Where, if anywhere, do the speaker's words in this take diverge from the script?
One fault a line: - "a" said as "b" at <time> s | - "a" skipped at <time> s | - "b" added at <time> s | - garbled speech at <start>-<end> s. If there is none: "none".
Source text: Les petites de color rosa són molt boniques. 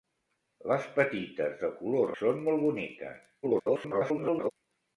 - "rosa" skipped at 2.2 s
- garbled speech at 3.4-4.5 s